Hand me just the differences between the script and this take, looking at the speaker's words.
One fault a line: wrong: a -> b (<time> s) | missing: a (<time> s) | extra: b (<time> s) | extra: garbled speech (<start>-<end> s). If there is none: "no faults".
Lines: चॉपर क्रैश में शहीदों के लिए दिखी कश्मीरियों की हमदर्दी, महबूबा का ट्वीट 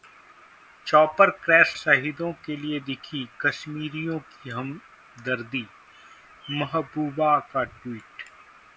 missing: में (1.8 s)